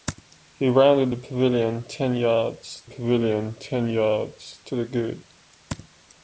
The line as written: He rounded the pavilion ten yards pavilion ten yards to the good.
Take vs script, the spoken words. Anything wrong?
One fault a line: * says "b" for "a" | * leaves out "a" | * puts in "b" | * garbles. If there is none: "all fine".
all fine